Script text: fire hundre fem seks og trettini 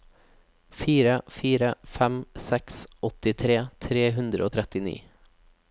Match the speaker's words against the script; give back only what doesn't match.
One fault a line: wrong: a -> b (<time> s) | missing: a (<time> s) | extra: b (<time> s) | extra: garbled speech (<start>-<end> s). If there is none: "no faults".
wrong: hundre -> fire (1.4 s)
extra: åttitre tre hundre (3.1 s)